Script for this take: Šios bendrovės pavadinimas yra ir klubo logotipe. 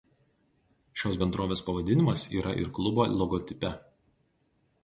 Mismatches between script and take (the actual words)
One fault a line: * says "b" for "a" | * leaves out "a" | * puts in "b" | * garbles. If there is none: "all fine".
all fine